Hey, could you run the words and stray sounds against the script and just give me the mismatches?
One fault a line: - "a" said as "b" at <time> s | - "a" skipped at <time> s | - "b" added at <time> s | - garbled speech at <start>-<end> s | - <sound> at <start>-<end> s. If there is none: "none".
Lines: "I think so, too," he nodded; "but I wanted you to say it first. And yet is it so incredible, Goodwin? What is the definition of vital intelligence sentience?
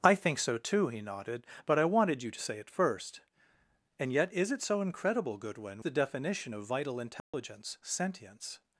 - "What is" skipped at 5.8 s
- dropout at 7.2-7.3 s